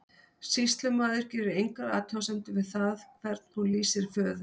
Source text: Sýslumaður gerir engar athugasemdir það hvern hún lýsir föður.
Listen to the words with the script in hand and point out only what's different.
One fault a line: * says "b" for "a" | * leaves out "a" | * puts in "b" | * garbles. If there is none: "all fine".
* puts in "við"